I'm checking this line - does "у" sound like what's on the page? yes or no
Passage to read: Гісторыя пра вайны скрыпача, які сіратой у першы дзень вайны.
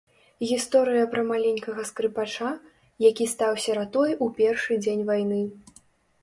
yes